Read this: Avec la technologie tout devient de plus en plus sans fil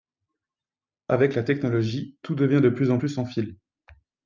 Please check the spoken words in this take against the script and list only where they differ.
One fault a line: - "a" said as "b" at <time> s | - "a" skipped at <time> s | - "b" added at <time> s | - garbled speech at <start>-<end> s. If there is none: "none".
none